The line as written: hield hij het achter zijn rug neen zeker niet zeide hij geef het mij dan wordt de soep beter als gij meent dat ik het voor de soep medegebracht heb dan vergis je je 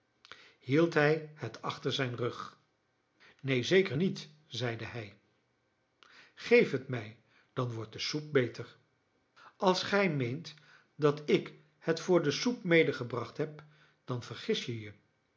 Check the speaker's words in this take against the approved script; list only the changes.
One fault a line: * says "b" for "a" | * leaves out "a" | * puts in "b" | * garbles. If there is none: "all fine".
all fine